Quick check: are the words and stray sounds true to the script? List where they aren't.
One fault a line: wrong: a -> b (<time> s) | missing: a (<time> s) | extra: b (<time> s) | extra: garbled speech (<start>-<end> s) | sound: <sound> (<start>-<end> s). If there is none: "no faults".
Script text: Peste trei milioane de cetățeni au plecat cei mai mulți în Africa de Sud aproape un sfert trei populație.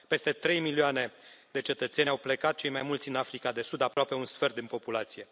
sound: dropout (3.9-4.0 s)
wrong: trei -> din (4.5 s)